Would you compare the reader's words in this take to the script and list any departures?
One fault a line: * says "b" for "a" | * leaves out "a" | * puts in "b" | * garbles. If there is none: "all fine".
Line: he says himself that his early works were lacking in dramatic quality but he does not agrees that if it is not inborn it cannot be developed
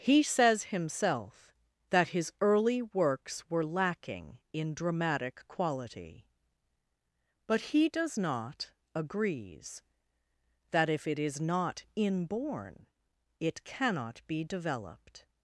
all fine